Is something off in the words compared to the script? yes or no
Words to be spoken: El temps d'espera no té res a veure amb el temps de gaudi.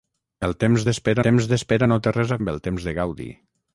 yes